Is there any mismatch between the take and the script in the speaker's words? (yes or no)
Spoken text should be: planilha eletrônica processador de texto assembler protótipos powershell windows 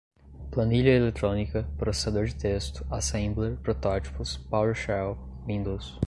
no